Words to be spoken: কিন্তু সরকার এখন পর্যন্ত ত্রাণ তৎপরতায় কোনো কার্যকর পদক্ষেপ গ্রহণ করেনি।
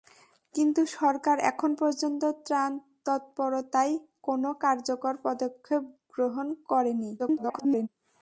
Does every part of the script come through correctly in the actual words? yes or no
no